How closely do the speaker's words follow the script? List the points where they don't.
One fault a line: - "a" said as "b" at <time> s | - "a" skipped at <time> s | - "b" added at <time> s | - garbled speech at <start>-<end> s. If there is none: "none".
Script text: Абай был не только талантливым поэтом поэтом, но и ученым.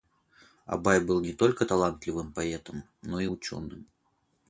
- "поэтом" skipped at 2.8 s